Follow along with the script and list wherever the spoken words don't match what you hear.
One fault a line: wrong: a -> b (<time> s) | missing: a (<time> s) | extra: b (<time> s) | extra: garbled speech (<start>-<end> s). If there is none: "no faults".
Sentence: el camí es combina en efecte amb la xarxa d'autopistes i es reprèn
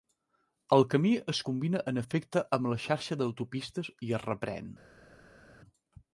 no faults